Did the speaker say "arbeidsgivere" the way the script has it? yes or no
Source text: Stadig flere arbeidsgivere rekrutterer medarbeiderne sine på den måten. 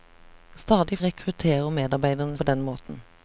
no